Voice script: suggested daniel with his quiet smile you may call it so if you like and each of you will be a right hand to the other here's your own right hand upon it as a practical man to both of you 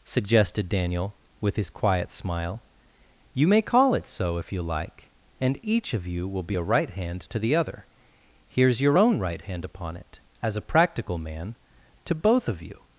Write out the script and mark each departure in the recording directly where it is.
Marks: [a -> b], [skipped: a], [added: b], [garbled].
suggested daniel with his quiet smile you may call it so if you like and each of you will be a right hand to the other here's your own right hand upon it as a practical man to both of you